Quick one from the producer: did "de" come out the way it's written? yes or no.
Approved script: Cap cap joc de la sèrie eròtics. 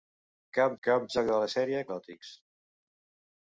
yes